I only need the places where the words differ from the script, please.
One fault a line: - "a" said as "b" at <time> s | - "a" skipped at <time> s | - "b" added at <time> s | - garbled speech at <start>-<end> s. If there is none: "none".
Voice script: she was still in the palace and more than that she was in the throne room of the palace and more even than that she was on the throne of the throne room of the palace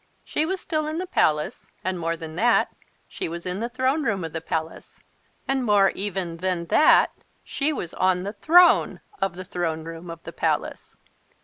none